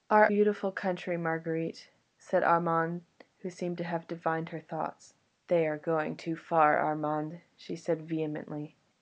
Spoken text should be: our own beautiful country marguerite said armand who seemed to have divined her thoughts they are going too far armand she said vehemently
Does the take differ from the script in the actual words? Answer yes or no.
yes